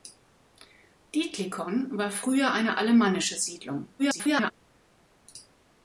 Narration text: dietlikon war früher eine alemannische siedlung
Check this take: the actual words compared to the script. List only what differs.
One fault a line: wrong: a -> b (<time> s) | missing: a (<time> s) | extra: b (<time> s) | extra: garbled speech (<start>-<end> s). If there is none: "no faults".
extra: garbled speech (4.0-4.5 s)